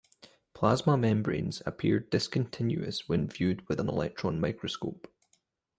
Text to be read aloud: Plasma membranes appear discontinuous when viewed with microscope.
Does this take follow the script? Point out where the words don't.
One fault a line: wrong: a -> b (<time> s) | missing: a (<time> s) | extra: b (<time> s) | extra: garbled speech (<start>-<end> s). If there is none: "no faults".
extra: an electron (3.8 s)